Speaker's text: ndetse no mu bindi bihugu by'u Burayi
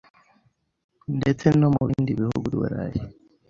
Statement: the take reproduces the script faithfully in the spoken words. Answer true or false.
false